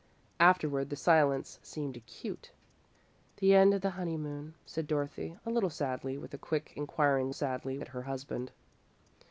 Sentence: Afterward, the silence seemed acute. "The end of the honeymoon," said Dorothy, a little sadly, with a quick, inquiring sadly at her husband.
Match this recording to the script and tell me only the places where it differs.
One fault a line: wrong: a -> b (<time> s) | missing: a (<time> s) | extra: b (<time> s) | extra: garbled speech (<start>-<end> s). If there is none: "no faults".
no faults